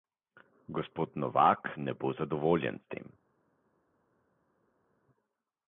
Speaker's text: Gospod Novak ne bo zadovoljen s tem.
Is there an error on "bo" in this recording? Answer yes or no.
no